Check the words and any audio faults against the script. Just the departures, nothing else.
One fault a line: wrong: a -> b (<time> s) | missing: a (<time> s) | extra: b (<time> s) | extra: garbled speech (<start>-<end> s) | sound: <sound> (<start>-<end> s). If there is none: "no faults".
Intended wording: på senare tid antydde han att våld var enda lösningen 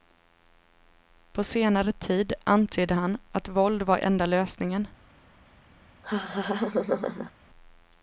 sound: laugh (6.0-7.3 s)